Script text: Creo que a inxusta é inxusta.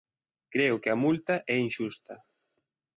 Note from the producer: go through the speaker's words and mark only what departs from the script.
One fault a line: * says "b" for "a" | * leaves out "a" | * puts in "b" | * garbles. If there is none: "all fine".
* says "multa" for "inxusta"